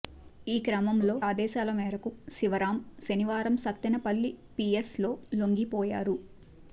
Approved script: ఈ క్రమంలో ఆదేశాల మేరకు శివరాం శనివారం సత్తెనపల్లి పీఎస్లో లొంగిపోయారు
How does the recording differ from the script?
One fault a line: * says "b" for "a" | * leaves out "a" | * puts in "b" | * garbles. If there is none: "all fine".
all fine